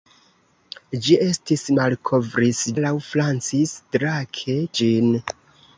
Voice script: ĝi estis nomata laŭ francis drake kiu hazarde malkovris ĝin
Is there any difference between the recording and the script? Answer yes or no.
yes